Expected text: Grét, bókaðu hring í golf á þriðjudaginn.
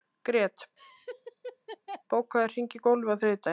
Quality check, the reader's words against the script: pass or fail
pass